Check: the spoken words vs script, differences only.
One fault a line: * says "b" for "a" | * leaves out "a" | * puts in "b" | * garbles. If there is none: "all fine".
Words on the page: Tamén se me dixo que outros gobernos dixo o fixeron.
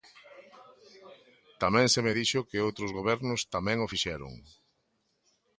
* says "tamén" for "dixo"